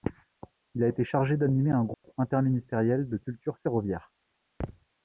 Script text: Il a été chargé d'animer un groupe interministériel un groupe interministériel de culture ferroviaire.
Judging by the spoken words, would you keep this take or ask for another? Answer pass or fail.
fail